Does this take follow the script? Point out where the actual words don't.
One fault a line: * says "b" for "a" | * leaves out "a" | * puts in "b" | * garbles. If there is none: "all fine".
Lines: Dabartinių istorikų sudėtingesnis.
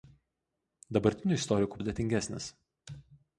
all fine